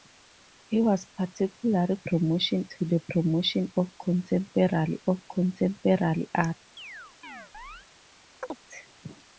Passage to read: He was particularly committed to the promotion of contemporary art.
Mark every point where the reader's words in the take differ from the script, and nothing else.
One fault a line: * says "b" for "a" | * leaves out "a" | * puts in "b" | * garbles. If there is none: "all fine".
* says "promotion" for "committed"
* puts in "of contemporary"